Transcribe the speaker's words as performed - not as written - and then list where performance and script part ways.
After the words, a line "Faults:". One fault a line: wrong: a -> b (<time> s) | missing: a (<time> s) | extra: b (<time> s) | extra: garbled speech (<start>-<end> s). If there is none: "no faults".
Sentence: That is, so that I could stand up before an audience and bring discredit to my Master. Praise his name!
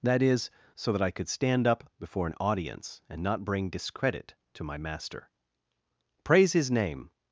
That is, so that I could stand up before an audience and not bring discredit to my Master. Praise his name!
Faults:
extra: not (3.2 s)